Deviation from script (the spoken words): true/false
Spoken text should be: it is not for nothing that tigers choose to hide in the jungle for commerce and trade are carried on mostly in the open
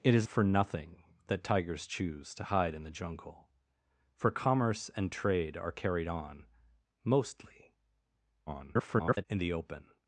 true